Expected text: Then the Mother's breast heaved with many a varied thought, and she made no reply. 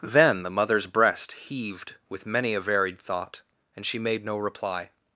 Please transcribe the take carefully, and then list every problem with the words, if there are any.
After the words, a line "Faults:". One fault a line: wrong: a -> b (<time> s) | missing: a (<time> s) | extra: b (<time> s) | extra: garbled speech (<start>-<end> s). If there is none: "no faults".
Then the Mother's breast heaved with many a varied thought, and she made no reply.
Faults:
no faults